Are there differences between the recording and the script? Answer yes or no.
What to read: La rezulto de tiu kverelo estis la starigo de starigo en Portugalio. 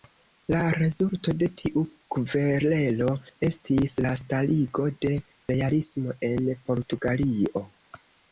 yes